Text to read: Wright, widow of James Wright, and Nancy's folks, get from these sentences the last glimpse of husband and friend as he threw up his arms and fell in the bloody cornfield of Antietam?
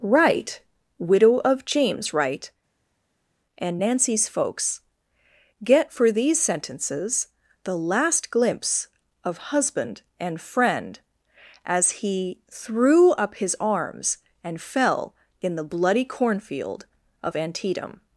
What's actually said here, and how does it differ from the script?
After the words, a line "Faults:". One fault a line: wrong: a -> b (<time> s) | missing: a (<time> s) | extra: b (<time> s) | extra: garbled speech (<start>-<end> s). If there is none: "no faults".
Wright, widow of James Wright, and Nancy's folks, get for these sentences the last glimpse of husband and friend as he threw up his arms and fell in the bloody cornfield of Antietam?
Faults:
wrong: from -> for (5.9 s)